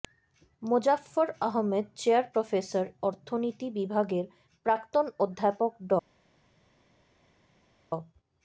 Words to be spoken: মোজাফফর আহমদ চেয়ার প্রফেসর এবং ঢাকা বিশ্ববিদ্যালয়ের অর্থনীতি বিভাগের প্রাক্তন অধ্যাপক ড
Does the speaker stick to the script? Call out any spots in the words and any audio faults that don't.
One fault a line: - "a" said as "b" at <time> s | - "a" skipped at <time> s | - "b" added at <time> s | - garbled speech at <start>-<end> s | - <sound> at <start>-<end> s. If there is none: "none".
- "এবং ঢাকা বিশ্ববিদ্যালয়ের" skipped at 2.9 s